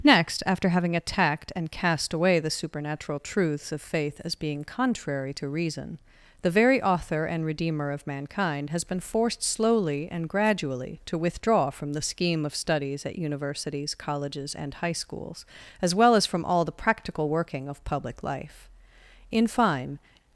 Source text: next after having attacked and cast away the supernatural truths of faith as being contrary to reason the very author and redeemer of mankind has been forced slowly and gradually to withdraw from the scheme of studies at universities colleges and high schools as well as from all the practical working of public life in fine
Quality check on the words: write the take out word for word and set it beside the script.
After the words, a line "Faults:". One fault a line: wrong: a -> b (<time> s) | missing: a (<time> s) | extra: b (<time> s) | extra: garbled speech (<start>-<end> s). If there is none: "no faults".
next after having attacked and cast away the supernatural truths of faith as being contrary to reason the very author and redeemer of mankind has been forced slowly and gradually to withdraw from the scheme of studies at universities colleges and high schools as well as from all the practical working of public life in fine
Faults:
no faults